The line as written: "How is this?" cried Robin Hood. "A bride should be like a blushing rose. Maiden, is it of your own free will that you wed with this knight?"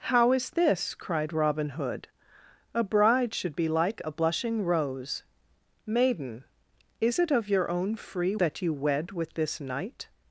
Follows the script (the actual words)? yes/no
no